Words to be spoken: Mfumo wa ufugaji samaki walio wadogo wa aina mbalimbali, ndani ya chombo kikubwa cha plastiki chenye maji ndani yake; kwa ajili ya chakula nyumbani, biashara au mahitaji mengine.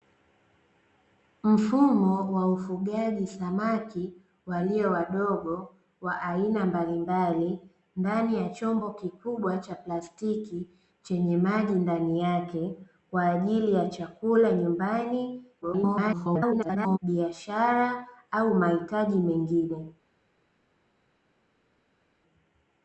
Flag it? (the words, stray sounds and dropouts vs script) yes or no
yes